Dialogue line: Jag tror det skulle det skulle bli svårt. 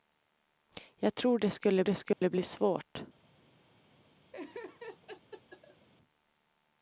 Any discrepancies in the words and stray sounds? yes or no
yes